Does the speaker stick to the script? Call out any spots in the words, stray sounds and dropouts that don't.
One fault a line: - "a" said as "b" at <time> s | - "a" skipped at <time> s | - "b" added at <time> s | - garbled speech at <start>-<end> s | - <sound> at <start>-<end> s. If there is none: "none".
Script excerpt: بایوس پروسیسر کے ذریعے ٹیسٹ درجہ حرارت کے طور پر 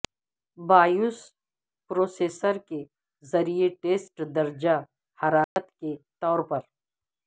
- dropout at 5.4-5.6 s